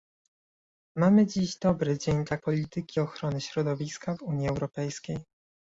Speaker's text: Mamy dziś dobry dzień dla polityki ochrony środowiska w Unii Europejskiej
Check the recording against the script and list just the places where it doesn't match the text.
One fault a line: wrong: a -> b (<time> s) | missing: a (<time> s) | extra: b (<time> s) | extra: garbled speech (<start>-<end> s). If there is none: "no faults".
no faults